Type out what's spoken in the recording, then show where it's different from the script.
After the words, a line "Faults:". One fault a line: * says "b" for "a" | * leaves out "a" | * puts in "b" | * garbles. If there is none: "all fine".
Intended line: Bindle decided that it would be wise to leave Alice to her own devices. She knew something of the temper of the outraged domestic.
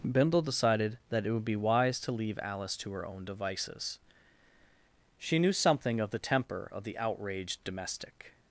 Bindle decided that it would be wise to leave Alice to her own devices. She knew something of the temper of the outraged domestic.
Faults:
all fine